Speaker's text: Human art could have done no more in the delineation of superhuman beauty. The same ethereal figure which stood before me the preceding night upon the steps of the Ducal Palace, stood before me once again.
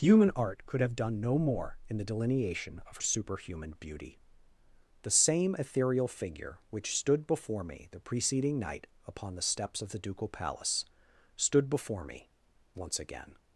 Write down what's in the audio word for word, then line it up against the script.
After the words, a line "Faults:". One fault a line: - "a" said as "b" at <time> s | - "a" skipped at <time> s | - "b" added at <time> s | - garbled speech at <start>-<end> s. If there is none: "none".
Human art could have done no more in the delineation of superhuman beauty. The same ethereal figure which stood before me the preceding night upon the steps of the Ducal Palace, stood before me once again.
Faults:
none